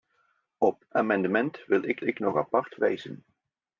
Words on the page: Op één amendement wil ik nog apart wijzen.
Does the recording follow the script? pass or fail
fail